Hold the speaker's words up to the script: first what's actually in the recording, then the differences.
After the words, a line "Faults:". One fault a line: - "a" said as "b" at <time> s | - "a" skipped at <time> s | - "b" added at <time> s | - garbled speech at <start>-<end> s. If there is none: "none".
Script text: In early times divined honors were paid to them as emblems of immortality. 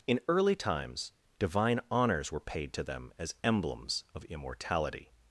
In early times divine honors were paid to them as emblems of immortality.
Faults:
- "divined" said as "divine" at 1.4 s